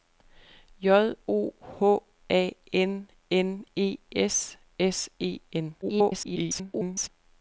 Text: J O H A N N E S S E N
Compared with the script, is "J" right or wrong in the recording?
right